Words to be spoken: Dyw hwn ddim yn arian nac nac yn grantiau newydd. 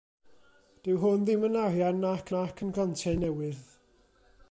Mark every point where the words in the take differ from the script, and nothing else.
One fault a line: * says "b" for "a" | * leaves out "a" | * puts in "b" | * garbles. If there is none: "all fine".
all fine